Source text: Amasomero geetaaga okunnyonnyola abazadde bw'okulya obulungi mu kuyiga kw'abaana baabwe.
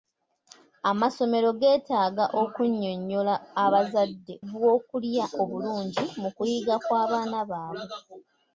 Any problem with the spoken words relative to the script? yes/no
no